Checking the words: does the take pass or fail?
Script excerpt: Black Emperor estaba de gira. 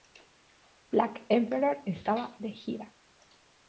pass